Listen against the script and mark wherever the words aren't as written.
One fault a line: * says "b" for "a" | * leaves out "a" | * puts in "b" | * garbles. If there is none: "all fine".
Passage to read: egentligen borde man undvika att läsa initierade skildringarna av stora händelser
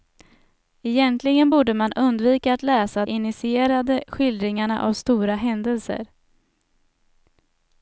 all fine